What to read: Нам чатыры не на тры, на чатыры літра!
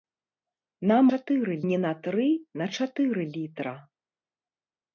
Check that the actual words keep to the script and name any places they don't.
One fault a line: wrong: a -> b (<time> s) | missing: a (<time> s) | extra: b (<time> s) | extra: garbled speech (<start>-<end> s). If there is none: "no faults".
no faults